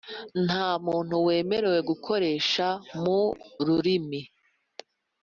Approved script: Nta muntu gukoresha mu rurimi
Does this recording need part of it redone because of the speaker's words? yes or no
yes